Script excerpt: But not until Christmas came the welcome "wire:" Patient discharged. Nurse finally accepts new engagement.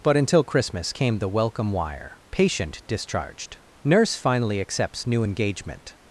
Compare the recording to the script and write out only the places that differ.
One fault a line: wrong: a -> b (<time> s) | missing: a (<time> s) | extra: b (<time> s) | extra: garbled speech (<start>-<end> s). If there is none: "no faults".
missing: not (0.2 s)